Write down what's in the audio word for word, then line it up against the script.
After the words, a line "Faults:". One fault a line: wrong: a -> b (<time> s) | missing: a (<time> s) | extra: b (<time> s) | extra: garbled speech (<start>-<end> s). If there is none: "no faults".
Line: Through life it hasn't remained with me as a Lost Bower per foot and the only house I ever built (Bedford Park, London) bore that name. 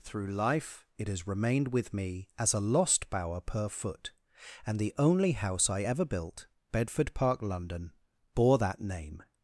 Through life it has remained with me as a Lost Bower per foot and the only house I ever built (Bedford Park, London) bore that name.
Faults:
wrong: hasn't -> has (1.1 s)